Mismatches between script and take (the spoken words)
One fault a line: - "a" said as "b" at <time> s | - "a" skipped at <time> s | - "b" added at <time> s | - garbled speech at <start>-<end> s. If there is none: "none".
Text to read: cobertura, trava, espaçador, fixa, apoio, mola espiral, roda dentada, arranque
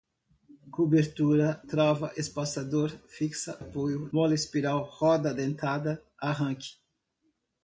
none